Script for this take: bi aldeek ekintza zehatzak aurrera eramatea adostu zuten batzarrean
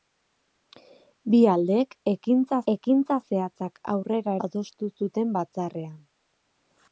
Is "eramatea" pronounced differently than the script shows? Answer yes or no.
yes